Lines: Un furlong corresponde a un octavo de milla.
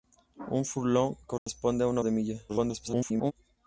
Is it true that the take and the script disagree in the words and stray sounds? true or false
true